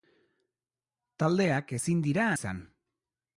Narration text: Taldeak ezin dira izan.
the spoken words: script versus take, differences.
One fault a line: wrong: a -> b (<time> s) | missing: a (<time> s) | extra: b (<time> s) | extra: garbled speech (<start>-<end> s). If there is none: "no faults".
no faults